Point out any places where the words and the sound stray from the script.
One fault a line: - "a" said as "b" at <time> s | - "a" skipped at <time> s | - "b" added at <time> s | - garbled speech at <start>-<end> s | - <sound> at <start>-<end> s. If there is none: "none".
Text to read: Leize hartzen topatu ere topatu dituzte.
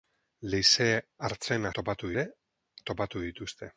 none